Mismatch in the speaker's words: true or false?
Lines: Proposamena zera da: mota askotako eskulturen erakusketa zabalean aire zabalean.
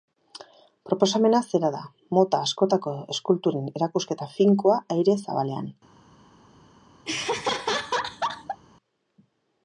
true